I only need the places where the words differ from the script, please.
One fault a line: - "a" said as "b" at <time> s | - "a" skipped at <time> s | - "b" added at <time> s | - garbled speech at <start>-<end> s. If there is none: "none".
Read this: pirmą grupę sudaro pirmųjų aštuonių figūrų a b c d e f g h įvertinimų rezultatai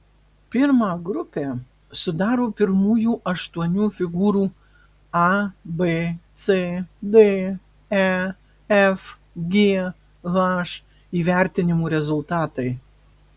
none